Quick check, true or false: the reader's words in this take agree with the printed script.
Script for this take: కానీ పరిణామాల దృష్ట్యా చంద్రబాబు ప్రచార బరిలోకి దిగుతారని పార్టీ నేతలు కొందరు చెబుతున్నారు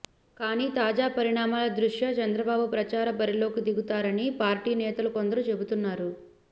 false